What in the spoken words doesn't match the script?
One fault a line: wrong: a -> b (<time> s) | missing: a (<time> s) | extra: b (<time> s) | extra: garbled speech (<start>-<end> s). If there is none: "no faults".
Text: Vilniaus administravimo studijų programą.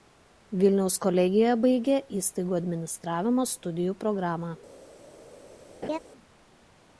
extra: kolegijoje baigė įstaigų (1.0 s)